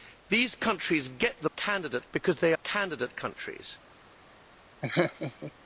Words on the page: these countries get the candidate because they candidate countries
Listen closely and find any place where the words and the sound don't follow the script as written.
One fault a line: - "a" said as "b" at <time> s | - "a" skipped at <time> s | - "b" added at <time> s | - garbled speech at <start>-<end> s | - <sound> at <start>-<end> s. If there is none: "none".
- laugh at 4.8-5.5 s